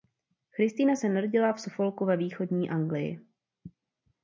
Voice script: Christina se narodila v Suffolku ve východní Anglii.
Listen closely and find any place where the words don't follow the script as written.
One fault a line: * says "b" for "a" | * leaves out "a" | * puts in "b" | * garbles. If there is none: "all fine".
all fine